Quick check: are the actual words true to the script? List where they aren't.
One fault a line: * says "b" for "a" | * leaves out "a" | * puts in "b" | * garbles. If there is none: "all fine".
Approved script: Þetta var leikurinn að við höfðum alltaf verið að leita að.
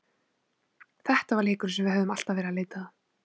* says "sem" for "að"